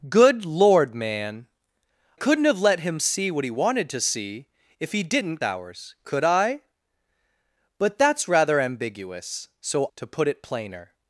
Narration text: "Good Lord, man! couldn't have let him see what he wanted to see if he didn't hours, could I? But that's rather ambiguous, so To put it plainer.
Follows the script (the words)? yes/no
yes